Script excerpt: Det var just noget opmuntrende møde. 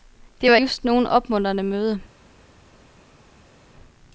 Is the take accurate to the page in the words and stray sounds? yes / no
yes